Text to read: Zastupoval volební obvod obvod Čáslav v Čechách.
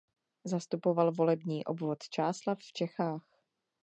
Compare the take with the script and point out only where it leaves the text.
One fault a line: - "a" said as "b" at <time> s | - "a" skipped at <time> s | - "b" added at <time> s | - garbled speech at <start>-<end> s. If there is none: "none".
- "obvod" skipped at 2.0 s